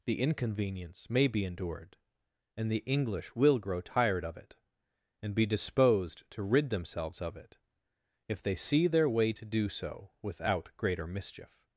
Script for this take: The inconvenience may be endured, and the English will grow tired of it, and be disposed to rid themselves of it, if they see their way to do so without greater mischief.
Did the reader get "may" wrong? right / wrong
right